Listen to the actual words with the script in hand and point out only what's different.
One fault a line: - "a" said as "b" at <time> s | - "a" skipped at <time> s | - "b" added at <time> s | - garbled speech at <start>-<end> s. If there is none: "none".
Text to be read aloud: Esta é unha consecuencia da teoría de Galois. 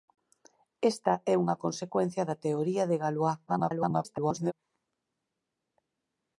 - garbled speech at 3.5-4.5 s